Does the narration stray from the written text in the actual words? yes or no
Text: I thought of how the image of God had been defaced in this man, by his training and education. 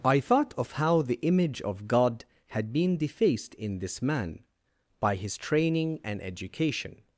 no